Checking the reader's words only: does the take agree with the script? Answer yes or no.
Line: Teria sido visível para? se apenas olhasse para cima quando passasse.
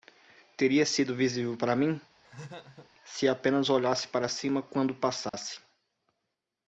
no